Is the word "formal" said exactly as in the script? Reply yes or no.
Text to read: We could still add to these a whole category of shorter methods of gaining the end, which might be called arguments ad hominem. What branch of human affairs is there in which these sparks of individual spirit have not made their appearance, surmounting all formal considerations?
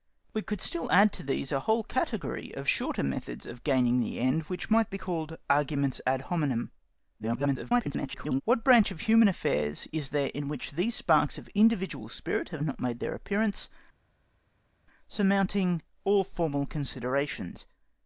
yes